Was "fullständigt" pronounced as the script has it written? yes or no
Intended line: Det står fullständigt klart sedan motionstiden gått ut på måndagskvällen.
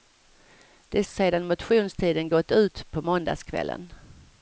no